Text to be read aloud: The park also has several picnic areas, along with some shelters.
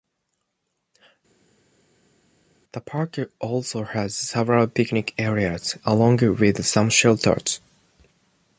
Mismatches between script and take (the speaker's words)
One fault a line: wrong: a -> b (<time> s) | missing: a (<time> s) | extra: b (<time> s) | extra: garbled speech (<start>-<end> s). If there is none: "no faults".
no faults